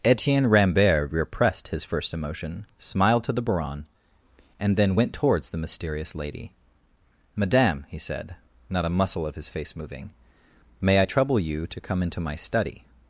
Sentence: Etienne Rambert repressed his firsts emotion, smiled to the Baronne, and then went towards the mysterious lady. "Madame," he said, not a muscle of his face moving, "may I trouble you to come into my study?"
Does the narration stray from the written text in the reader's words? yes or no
yes